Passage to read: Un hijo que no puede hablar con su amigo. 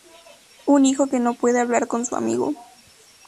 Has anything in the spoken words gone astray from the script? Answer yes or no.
no